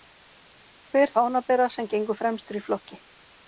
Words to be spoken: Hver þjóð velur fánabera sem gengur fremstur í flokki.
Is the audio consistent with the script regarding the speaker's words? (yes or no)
no